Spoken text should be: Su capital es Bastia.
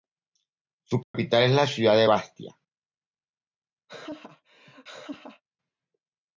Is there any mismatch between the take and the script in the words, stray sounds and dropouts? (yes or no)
yes